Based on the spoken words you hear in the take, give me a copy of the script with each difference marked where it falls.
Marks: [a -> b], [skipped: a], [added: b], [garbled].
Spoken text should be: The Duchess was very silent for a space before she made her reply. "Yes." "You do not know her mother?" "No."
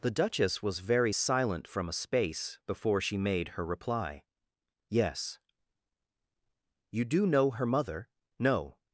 The Duchess was very silent [for -> from] a space before she made her reply. "Yes." "You do [skipped: not] know her mother?" "No."